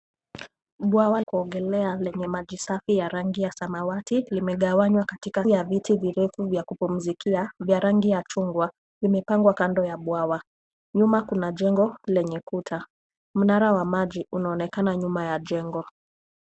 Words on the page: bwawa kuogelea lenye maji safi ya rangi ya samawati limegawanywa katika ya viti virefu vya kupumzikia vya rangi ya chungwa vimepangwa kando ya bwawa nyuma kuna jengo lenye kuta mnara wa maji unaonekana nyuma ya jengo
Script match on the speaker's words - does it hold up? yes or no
yes